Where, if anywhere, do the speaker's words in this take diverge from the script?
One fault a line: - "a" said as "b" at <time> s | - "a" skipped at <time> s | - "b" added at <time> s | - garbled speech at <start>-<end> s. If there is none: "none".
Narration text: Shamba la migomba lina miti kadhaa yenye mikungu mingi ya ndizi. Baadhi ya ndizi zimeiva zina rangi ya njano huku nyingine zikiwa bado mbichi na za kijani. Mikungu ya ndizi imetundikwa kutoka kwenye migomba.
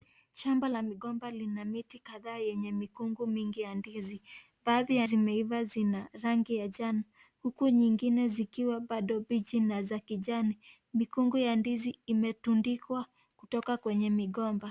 - "ndizi" skipped at 5.1 s